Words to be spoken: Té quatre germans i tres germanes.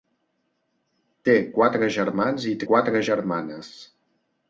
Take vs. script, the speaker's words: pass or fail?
fail